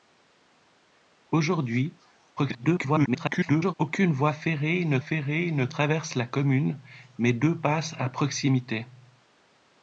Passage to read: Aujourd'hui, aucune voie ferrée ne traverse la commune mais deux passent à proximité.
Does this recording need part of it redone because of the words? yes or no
yes